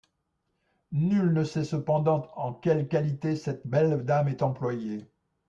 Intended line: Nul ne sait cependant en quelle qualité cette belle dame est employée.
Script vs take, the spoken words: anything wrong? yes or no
no